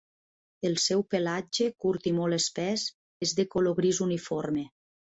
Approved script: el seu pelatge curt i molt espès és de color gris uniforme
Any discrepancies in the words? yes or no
no